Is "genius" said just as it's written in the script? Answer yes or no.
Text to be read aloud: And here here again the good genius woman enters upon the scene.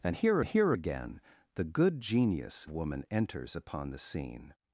yes